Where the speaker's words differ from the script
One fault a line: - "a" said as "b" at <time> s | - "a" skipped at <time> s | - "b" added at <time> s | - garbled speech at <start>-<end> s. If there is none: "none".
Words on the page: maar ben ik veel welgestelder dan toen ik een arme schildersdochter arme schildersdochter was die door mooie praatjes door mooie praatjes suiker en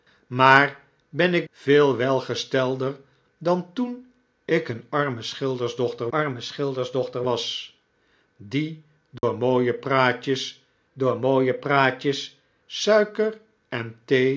none